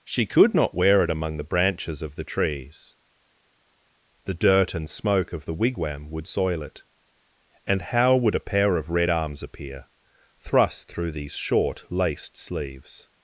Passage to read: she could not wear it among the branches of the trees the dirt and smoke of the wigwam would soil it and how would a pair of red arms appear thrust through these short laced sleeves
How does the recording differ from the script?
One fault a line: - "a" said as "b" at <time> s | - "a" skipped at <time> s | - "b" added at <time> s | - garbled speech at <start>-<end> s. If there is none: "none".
none